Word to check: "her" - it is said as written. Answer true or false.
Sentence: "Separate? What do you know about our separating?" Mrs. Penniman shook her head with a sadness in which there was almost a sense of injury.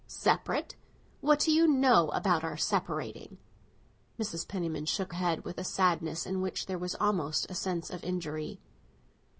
false